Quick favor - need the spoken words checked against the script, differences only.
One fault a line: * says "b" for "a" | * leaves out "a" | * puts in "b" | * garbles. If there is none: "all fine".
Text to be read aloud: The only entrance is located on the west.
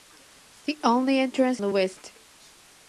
* leaves out "is located on"